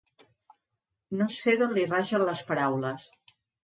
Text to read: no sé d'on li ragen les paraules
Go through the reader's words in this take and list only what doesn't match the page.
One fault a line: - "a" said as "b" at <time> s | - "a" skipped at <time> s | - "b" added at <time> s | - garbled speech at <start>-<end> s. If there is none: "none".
none